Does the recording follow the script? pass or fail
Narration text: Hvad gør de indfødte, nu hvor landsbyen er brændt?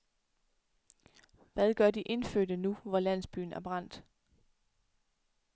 pass